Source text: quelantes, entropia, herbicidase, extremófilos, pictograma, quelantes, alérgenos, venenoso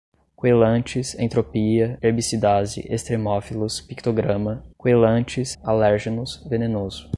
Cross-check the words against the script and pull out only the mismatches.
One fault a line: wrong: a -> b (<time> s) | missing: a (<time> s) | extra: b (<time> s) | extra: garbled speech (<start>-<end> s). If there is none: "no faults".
no faults